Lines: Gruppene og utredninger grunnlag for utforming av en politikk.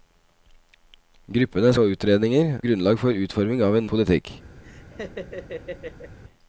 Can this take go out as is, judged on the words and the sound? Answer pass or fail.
fail